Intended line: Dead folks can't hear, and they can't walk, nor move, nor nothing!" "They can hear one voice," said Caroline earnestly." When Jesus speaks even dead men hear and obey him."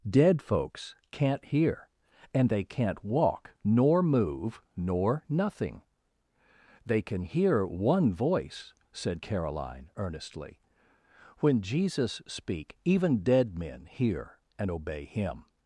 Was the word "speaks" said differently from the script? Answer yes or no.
yes